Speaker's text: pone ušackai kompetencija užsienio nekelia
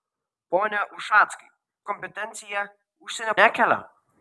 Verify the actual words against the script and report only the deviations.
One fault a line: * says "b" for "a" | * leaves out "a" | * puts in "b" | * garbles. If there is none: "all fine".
all fine